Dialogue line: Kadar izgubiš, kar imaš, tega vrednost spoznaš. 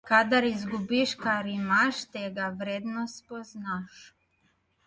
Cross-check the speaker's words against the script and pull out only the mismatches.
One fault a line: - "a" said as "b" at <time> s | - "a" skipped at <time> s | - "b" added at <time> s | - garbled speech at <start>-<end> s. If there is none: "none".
none